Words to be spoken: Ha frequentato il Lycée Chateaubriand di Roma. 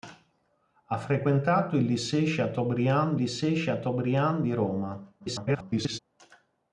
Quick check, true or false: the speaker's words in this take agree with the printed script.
false